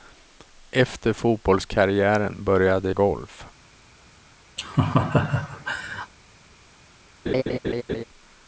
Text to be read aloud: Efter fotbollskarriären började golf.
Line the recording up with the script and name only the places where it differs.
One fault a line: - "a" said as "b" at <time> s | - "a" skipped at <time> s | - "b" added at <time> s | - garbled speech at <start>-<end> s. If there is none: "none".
none